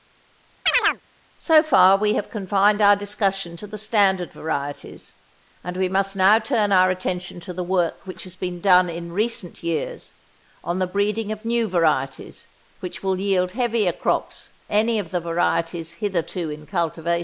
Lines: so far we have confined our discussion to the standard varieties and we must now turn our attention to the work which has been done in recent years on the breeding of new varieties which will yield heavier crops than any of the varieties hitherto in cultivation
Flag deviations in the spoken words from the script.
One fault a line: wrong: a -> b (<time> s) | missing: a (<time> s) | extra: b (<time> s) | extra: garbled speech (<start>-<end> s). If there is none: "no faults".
missing: than (14.5 s)